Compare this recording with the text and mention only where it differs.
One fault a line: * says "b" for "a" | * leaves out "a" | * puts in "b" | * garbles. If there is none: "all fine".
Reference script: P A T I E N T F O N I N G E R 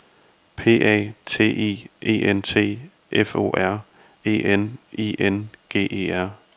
* puts in "R E"